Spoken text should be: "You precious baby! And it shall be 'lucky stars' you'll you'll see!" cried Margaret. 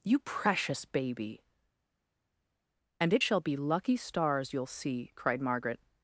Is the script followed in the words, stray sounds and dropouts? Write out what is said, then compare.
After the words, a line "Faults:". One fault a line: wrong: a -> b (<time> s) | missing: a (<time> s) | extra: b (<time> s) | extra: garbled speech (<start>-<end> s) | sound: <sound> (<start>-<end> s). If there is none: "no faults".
"You precious baby! And it shall be 'lucky stars' you'll see!" cried Margaret.
Faults:
missing: you'll (4.7 s)